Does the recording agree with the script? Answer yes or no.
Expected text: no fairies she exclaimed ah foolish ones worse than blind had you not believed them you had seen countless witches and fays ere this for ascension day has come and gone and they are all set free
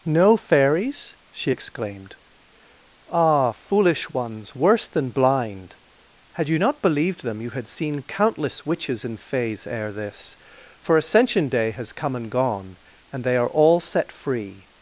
yes